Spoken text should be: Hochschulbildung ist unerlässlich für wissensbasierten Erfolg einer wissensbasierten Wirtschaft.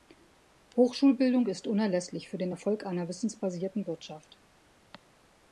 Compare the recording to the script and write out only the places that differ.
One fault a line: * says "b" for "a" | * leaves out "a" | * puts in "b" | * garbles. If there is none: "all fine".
* says "den" for "wissensbasierten"